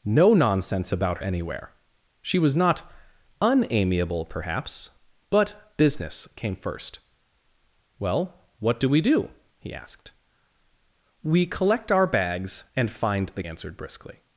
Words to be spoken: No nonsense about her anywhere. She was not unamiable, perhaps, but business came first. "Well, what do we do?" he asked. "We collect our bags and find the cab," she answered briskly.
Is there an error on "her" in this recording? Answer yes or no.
yes